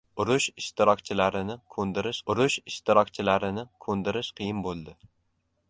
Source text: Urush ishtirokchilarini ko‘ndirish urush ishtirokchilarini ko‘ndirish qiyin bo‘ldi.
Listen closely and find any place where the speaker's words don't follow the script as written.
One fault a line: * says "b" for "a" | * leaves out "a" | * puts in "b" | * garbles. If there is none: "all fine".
all fine